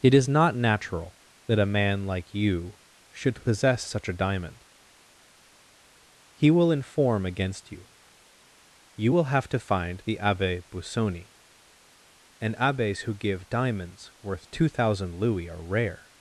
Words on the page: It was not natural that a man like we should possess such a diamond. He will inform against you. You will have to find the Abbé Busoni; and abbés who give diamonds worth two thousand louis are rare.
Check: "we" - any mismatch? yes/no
yes